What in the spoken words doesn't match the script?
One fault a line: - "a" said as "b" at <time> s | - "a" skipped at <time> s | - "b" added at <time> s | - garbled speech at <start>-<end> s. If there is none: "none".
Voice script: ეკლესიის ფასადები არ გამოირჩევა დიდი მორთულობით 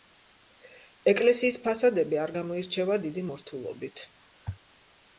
none